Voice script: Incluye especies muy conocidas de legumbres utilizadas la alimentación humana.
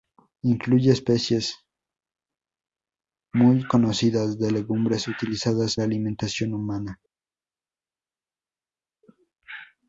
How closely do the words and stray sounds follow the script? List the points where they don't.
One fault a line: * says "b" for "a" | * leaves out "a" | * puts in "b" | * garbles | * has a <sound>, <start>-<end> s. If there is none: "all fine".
all fine